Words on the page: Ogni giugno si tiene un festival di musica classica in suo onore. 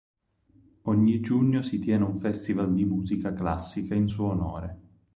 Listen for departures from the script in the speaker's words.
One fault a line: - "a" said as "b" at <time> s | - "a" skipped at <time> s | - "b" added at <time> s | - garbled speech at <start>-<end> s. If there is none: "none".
none